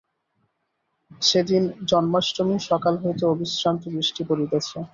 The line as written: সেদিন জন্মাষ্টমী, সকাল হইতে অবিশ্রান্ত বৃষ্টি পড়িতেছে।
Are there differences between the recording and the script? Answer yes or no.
no